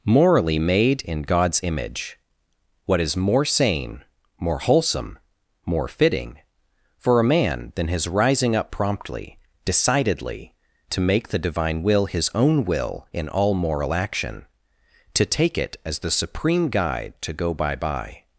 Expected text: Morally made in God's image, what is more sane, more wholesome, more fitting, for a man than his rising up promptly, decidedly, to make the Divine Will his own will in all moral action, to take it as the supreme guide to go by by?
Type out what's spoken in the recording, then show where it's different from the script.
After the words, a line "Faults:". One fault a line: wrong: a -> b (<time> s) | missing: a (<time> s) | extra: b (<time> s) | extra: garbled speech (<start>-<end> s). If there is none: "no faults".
Morally made in God's image, what is more sane, more wholesome, more fitting, for a man than his rising up promptly, decidedly, to make the Divine Will his own will in all moral action, to take it as the supreme guide to go by by?
Faults:
no faults